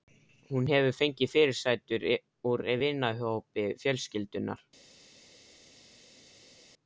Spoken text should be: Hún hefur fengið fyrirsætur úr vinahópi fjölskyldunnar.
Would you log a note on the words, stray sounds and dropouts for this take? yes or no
no